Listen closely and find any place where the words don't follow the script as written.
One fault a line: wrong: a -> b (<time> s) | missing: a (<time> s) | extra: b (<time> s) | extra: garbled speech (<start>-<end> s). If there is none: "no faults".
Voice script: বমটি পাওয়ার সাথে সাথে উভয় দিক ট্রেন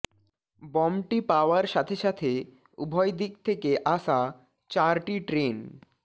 extra: থেকে আসা চারটি (3.4 s)